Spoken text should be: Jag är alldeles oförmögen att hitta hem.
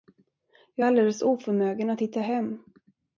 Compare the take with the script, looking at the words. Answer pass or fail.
pass